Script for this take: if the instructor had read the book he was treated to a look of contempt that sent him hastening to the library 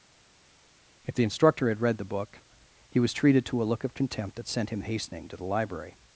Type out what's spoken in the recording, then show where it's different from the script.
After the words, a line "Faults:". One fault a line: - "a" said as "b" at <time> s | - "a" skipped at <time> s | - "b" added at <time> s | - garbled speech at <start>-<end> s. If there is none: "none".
if the instructor had read the book he was treated to a look of contempt that sent him hastening to the library
Faults:
none